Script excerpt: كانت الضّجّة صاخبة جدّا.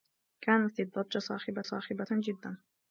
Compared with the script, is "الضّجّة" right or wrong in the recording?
right